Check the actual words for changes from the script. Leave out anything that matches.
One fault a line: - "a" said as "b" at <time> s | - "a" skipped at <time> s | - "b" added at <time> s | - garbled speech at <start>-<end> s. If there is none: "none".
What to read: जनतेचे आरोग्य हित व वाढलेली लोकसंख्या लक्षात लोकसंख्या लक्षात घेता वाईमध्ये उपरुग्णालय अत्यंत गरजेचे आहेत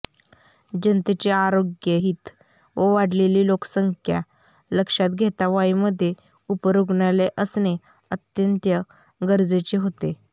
- "लोकसंख्या लक्षात" skipped at 5.2 s
- "असणे" added at 7.4 s
- "आहेत" said as "होते" at 9.8 s